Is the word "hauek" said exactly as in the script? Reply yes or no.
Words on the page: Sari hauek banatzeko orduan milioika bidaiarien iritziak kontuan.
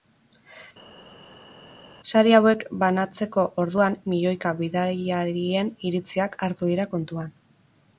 yes